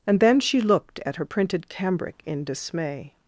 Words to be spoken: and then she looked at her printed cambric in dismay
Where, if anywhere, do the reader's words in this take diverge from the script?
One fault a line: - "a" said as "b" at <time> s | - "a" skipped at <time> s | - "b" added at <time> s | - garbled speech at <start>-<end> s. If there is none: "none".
none